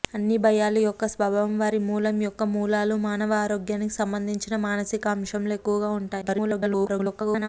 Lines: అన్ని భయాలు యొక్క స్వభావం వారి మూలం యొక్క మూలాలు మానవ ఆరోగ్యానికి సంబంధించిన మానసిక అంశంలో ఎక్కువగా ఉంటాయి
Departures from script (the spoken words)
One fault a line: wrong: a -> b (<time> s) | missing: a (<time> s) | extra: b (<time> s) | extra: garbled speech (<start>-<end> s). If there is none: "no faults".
extra: garbled speech (6.2-7.5 s)